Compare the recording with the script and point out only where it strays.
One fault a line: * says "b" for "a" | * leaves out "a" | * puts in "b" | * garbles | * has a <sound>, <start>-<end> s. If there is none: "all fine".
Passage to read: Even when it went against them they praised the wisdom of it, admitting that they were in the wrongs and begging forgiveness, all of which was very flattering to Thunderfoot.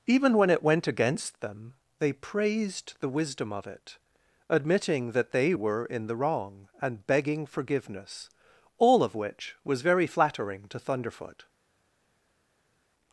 * says "wrong" for "wrongs"